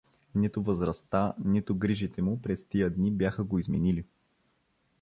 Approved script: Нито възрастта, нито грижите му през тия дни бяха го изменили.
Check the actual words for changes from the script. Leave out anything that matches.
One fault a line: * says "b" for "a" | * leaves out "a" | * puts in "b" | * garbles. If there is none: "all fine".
all fine